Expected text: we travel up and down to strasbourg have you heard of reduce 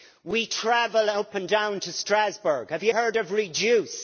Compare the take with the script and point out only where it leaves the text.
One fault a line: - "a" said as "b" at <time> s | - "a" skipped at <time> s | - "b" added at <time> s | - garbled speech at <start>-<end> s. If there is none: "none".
none